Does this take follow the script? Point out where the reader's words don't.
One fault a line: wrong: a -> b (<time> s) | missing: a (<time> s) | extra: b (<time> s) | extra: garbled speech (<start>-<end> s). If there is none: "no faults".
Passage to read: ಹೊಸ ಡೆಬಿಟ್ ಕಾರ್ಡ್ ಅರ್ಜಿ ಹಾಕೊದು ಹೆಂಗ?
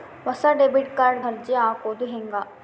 no faults